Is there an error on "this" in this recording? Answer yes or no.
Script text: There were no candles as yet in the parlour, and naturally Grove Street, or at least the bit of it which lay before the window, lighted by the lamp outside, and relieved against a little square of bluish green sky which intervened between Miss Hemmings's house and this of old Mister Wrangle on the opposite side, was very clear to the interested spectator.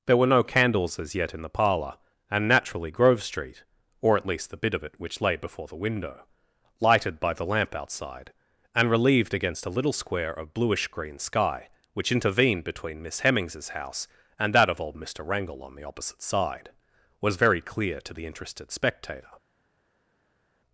yes